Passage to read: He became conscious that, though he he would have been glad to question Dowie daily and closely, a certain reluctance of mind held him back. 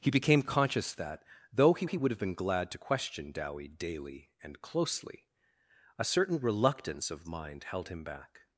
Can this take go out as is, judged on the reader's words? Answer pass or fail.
pass